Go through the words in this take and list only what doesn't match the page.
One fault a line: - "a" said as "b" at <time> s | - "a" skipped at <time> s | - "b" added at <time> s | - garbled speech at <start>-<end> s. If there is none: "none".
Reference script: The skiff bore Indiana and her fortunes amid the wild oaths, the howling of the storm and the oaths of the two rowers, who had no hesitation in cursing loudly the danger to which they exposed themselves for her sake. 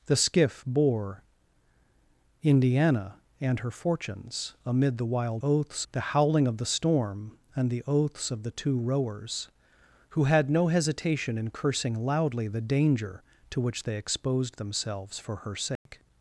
none